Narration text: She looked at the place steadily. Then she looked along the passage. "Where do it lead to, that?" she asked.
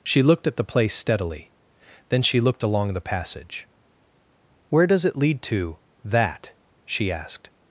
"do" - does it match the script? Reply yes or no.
no